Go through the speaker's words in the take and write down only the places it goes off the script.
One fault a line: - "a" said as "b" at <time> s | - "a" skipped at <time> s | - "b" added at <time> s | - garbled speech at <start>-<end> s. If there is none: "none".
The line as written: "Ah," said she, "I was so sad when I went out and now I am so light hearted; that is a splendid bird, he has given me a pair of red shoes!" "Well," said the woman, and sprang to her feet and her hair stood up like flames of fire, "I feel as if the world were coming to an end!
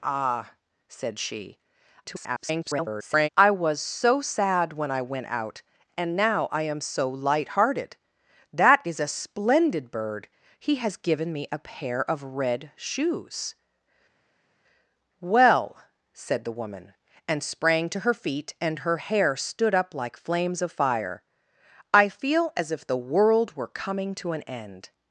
- garbled speech at 2.0-3.3 s